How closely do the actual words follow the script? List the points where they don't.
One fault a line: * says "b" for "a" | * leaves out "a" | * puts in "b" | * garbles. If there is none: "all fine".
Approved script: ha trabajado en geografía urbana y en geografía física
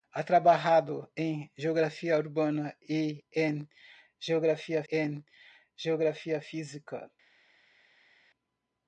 * puts in "en geografía"